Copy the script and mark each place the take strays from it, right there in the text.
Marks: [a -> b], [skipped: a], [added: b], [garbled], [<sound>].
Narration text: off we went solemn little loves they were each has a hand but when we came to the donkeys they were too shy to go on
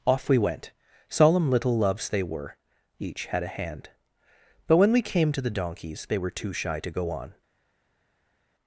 off we went solemn little loves they were each [has -> had] a hand but when we came to the donkeys they were too shy to go on